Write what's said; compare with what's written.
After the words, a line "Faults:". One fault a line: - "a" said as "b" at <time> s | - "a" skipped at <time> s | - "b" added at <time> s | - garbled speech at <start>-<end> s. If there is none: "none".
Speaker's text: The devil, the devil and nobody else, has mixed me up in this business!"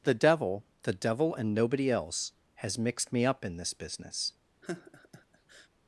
The devil, the devil and nobody else, has mixed me up in this business!"
Faults:
none